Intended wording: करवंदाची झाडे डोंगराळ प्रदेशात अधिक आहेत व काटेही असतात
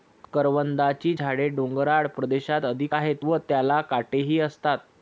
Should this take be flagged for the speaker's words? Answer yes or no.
yes